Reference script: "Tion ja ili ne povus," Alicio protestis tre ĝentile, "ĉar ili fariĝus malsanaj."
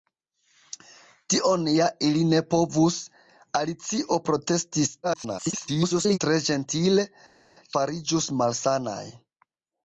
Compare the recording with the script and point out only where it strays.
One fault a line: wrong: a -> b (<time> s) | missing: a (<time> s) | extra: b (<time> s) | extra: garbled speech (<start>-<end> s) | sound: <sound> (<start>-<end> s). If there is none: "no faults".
extra: garbled speech (5.0-6.2 s)
missing: ĉar ili (7.1 s)